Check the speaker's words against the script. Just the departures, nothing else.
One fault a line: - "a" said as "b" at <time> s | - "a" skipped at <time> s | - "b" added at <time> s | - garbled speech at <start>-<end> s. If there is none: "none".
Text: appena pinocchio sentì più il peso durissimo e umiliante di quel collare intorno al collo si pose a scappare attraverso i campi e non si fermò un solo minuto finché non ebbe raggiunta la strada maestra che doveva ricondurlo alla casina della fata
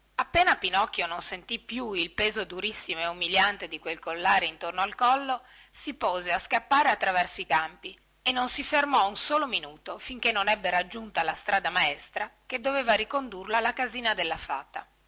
- "non" added at 1.1 s